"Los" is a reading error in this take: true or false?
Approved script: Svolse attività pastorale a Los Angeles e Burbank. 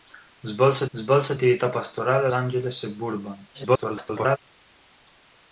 true